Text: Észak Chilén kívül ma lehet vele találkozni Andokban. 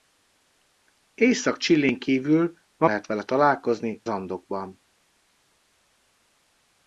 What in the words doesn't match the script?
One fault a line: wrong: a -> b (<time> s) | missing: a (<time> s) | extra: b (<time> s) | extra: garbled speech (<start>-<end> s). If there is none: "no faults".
no faults